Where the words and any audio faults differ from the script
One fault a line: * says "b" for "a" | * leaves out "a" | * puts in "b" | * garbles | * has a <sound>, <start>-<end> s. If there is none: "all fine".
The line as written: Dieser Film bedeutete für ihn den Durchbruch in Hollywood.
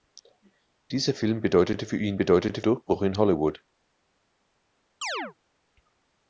* says "bedeutete" for "den"
* has a chirp, 5.0-5.3 s